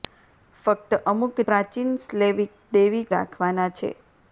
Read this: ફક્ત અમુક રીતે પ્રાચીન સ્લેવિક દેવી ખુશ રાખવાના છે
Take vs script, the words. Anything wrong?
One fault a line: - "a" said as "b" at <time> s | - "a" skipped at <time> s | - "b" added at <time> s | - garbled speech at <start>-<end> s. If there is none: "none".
- "રીતે" skipped at 1.4 s
- "ખુશ" skipped at 3.0 s